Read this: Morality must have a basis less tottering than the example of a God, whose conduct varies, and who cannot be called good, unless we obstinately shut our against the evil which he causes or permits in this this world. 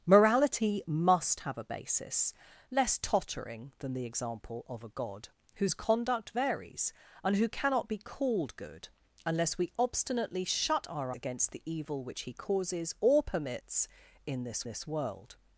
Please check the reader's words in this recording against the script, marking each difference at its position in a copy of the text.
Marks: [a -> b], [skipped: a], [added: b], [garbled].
Morality must have a basis less tottering than the example of a God, whose conduct varies, and who cannot be called good, unless we obstinately shut our against the evil which he causes or permits in this this world.